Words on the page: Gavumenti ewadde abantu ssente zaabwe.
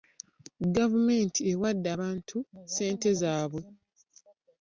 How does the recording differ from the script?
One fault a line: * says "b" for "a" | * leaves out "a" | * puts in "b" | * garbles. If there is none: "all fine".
all fine